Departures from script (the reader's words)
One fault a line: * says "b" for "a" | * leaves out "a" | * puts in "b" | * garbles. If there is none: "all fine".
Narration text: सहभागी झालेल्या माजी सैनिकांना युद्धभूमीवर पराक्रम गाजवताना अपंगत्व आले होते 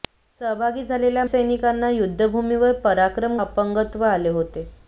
* leaves out "माजी"
* leaves out "गाजवताना"